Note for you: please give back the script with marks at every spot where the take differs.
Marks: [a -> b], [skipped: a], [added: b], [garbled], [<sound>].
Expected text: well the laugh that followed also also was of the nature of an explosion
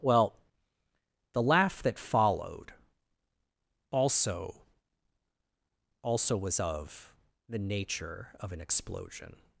well the laugh that followed also also was of the nature of an explosion